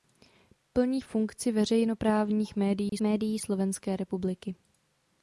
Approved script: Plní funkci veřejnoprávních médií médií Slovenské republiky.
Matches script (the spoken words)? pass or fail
pass